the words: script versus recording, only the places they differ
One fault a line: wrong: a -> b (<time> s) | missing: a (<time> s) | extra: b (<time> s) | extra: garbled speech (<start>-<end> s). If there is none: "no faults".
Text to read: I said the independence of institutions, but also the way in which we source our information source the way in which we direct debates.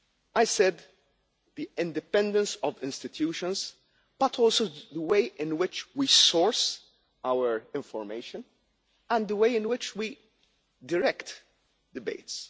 wrong: source -> and (9.1 s)